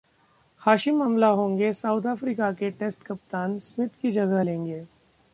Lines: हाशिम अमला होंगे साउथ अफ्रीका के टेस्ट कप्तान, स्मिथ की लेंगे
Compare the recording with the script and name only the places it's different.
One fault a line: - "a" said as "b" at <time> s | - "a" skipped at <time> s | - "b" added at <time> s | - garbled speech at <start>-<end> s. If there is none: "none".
- "जगह" added at 4.1 s